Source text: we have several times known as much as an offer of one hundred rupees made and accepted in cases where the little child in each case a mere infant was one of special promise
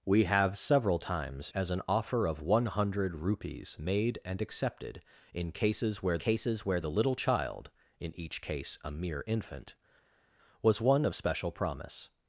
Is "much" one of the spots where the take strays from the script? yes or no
yes